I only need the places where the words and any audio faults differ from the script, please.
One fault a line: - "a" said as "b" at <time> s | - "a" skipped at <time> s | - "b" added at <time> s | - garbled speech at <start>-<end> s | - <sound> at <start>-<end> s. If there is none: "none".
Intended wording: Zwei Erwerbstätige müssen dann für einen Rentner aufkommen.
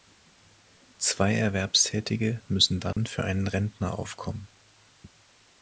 - dropout at 2.9-3.0 s